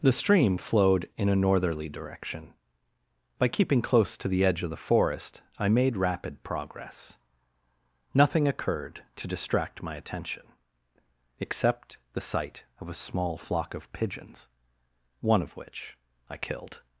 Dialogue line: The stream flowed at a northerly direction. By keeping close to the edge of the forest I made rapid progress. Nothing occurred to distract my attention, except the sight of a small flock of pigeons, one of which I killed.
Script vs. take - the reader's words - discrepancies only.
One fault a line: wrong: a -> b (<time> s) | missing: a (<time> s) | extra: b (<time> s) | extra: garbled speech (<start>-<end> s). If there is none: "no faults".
wrong: at -> in (1.1 s)